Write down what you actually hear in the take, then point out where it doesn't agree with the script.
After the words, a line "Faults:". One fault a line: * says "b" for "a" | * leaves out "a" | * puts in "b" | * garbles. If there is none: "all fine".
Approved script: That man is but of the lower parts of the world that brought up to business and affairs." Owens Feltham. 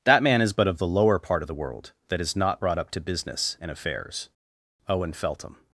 That man is but of the lower part of the world that is not brought up to business and affairs." Owen Feltham.
Faults:
* says "part" for "parts"
* puts in "is not"
* says "Owen" for "Owens"